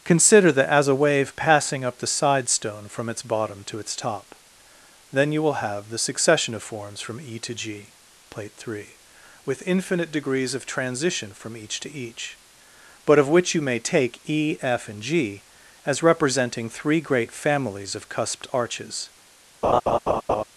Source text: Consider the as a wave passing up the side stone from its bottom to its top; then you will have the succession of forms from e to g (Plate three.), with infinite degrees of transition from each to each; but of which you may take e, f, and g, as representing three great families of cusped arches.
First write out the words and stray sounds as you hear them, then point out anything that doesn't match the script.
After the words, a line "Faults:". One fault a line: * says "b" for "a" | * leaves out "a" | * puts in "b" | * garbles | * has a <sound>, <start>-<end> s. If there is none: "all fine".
Consider the as a wave passing up the side stone from its bottom to its top; then you will have the succession of forms from e to g (Plate three.), with infinite degrees of transition from each to each; but of which you may take e, f, and g, as representing three great families of cusped arches.
Faults:
* has a laugh, 19.6-20.4 s